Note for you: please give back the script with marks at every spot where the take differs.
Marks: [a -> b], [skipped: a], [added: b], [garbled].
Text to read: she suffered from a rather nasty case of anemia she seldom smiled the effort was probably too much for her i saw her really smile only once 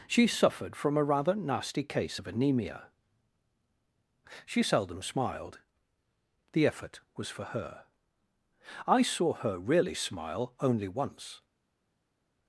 she suffered from a rather nasty case of anemia she seldom smiled the effort was [skipped: probably too much] for her i saw her really smile only once